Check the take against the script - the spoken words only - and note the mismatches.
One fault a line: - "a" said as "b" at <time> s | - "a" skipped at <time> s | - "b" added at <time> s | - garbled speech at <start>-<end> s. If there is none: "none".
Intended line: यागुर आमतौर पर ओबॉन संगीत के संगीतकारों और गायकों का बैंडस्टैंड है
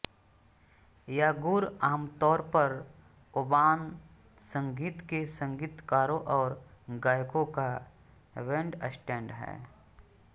none